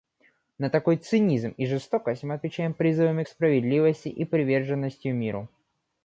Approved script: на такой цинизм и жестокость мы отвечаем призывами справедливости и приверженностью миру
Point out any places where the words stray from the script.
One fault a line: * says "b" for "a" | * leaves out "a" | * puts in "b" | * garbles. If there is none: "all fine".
all fine